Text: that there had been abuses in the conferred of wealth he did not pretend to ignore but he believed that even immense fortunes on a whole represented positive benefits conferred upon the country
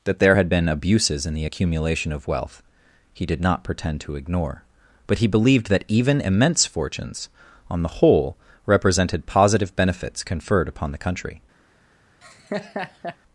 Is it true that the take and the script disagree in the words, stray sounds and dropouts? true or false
true